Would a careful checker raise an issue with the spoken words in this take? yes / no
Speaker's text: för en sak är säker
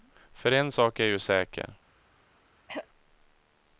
yes